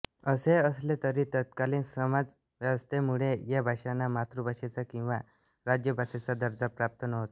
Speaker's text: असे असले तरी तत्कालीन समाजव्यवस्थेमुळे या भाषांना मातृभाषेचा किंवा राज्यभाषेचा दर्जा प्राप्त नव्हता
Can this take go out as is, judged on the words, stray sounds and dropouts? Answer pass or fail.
pass